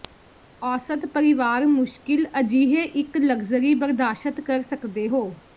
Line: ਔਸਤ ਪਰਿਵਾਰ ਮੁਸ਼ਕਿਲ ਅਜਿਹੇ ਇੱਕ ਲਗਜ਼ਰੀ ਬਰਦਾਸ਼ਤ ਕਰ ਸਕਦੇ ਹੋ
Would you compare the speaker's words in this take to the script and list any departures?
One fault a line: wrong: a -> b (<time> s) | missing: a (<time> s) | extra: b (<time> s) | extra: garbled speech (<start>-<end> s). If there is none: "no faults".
no faults